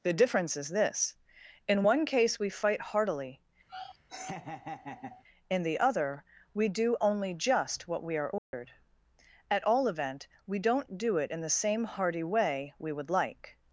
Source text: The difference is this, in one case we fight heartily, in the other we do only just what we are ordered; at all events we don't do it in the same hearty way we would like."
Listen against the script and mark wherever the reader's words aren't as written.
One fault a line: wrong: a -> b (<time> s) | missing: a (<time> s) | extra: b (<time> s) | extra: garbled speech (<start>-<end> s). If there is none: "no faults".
wrong: events -> event (9.9 s)